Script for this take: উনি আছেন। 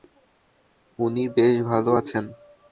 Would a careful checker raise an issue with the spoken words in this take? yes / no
yes